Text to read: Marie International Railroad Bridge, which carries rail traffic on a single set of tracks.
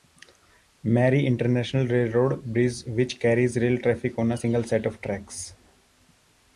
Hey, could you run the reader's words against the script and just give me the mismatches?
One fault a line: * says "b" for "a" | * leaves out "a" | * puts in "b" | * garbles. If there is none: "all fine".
all fine